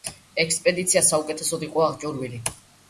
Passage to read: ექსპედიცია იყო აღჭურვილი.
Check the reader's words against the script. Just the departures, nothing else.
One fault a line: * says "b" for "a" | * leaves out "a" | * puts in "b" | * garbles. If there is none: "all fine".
* puts in "საუკეთესოდ"